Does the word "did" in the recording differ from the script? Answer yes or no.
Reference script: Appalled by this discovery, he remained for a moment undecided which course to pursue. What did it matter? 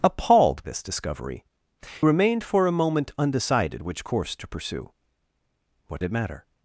yes